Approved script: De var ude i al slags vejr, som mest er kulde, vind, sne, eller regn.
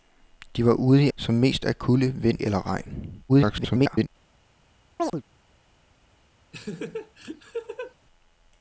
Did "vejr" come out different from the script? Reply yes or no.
yes